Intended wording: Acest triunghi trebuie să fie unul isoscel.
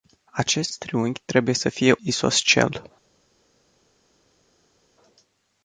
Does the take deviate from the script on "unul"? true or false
true